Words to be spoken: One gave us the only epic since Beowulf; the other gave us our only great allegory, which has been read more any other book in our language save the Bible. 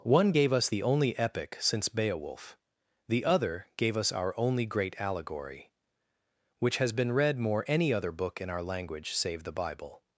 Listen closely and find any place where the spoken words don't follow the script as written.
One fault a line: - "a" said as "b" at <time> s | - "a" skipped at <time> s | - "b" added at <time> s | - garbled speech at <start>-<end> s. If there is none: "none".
none